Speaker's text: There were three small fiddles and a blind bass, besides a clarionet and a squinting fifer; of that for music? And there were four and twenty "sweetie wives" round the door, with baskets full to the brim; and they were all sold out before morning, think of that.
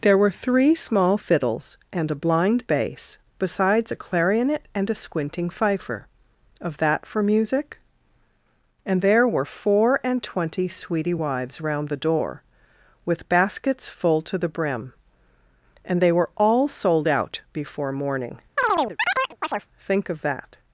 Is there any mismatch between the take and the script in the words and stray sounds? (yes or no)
yes